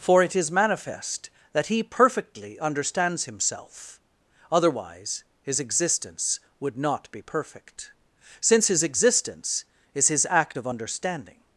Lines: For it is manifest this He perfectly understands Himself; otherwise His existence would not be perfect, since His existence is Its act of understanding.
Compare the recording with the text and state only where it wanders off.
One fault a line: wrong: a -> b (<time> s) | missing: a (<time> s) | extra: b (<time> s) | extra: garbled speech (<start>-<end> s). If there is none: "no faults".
wrong: this -> that (1.5 s)
wrong: Its -> His (10.1 s)